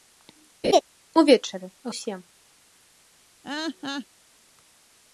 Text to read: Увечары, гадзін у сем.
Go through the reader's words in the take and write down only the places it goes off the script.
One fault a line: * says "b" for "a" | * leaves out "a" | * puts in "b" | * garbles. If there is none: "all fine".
* leaves out "гадзін"